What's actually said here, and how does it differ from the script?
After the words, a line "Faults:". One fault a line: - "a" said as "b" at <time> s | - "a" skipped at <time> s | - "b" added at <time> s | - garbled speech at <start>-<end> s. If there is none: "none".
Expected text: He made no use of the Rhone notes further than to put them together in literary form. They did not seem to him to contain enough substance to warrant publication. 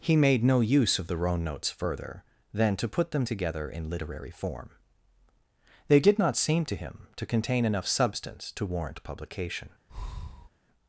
He made no use of the Rhone notes further than to put them together in literary form. They did not seem to him to contain enough substance to warrant publication.
Faults:
none